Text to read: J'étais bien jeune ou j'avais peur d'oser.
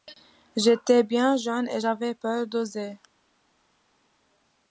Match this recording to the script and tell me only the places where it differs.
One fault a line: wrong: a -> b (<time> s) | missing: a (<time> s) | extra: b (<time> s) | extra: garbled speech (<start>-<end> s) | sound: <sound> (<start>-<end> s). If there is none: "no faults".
wrong: ou -> et (1.7 s)